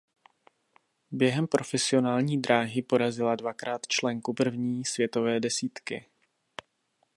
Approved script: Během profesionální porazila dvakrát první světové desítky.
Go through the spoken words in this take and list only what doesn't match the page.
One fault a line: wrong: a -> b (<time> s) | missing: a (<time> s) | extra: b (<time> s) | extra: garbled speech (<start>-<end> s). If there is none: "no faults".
extra: dráhy (2.4 s)
extra: členku (3.9 s)